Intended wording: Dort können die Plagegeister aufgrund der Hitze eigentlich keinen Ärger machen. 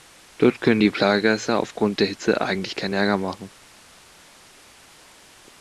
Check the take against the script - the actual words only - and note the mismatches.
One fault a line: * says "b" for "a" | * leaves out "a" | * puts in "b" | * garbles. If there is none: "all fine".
all fine